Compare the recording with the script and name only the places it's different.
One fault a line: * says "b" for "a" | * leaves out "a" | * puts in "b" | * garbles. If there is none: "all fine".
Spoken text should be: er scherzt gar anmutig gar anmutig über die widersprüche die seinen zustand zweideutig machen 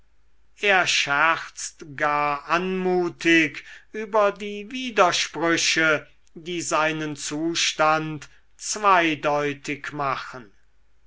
* leaves out "gar anmutig"